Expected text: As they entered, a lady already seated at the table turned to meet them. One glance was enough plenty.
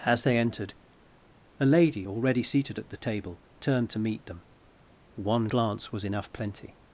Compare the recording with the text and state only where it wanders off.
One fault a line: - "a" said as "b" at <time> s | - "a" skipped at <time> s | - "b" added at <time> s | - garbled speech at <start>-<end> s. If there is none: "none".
none